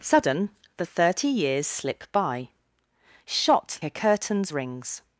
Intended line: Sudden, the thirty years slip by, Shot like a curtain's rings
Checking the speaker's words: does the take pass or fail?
fail